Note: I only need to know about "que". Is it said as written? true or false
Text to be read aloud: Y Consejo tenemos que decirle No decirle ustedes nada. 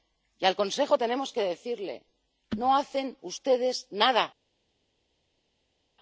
true